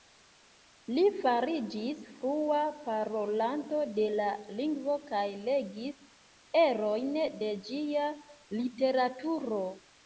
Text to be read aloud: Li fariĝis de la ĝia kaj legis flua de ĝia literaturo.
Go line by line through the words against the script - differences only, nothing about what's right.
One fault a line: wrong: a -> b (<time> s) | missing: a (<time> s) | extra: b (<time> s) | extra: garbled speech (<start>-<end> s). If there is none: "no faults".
extra: flua parolanto (2.2 s)
wrong: ĝia -> lingvo (4.6 s)
wrong: flua -> erojn (6.7 s)